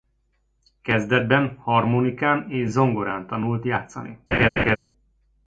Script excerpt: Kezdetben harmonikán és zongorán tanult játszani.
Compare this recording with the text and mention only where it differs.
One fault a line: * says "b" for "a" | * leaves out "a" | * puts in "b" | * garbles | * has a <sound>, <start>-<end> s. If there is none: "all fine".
* has a laugh, 4.3-4.8 s